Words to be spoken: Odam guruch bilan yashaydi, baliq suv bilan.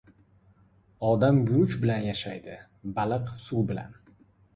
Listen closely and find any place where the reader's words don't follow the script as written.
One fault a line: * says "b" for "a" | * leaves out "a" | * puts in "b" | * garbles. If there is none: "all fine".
all fine